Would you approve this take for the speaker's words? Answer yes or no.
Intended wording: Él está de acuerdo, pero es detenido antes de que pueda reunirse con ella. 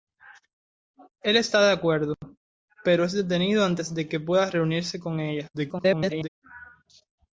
no